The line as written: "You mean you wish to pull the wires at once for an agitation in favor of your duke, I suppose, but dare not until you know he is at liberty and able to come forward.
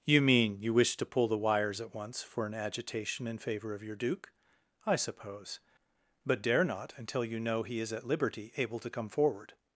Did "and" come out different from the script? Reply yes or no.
yes